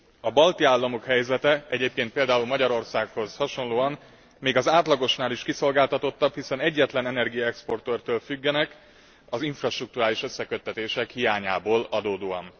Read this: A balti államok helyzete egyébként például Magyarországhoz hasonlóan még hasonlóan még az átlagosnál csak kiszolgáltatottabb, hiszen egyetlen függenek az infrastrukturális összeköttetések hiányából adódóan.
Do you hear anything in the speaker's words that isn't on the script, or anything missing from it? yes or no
yes